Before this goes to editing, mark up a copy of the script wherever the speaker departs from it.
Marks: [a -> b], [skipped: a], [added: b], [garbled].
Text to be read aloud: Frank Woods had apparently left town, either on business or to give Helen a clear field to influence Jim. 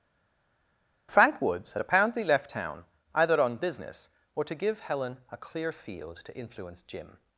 Frank Woods had apparently left town, either on business or to give Helen a clear field to influence Jim.